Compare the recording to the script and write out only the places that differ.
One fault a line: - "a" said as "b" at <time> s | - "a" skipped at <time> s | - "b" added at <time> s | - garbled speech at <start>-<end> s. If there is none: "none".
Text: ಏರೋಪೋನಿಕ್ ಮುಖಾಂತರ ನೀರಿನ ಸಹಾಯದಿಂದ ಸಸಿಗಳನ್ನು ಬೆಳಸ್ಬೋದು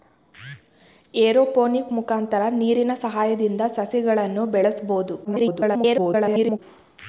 - garbled speech at 5.2-6.6 s